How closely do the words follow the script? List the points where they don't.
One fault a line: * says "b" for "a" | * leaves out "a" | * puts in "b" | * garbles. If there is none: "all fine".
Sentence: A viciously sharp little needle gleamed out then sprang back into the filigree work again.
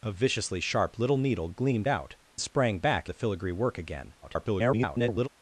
* leaves out "then"
* leaves out "into"
* garbles